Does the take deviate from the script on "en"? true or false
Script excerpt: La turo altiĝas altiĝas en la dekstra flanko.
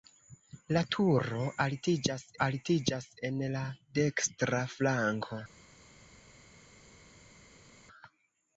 false